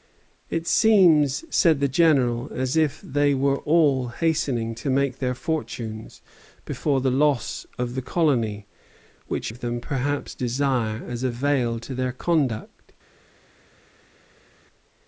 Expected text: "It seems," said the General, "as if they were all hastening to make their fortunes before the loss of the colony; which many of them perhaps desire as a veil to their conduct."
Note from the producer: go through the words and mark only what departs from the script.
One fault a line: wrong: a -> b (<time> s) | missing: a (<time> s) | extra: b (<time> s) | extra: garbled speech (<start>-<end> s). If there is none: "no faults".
missing: many (9.5 s)